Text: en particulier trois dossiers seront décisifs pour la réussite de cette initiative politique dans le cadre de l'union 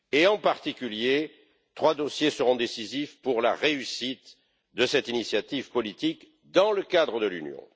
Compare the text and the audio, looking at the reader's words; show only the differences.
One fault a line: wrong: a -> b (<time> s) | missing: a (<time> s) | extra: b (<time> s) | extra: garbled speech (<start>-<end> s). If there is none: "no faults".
no faults